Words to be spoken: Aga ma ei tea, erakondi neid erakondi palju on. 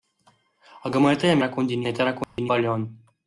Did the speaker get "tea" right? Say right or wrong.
right